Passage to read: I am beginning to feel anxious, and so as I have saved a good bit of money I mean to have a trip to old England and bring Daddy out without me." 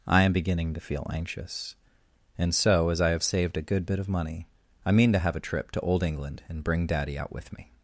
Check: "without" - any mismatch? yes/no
yes